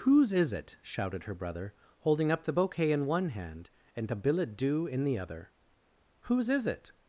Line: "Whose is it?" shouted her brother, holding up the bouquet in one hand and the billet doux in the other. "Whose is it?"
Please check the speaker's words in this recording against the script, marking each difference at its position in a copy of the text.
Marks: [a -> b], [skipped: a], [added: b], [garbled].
"Whose is it?" shouted her brother, holding up the bouquet in one hand and [the -> a] billet doux in the other. "Whose is it?"